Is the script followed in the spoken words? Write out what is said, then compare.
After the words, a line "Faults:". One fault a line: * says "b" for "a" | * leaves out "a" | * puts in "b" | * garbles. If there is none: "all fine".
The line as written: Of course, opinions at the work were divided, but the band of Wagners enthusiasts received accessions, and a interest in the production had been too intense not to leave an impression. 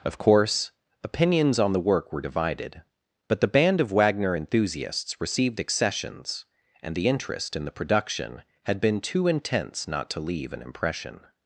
Of course, opinions on the work were divided, but the band of Wagner enthusiasts received accessions, and the interest in the production had been too intense not to leave an impression.
Faults:
* says "on" for "at"
* says "Wagner" for "Wagners"
* says "the" for "a"